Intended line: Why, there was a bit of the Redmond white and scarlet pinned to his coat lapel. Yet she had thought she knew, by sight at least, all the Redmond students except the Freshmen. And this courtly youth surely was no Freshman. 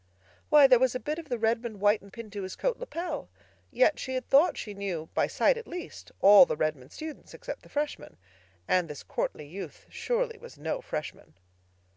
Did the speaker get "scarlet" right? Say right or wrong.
wrong